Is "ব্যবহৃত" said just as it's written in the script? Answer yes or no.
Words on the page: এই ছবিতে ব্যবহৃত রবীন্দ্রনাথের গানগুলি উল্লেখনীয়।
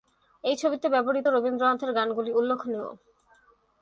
yes